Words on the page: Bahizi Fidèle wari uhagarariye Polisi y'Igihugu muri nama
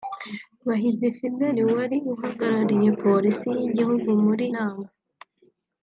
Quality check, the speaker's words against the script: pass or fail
pass